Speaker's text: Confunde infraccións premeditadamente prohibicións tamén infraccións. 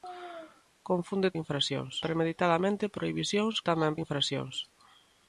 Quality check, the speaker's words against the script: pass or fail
pass